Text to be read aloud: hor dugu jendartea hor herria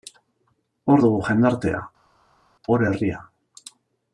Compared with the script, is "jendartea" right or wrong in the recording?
right